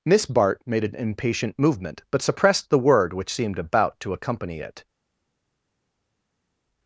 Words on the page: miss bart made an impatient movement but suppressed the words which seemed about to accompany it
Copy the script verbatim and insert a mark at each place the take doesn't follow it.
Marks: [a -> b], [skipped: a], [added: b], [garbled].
miss bart made an impatient movement but suppressed the [words -> word] which seemed about to accompany it